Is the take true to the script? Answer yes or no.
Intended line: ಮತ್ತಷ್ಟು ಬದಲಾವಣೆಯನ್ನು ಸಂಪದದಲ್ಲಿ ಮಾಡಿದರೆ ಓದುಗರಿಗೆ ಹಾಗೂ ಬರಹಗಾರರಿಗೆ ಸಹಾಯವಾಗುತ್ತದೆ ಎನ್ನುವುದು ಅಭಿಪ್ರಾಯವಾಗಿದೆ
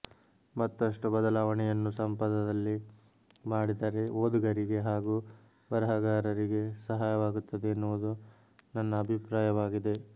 no